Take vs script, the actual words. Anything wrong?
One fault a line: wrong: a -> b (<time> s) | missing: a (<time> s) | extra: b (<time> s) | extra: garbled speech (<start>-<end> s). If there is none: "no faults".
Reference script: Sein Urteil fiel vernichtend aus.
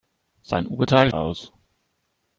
missing: fiel vernichtend (1.1 s)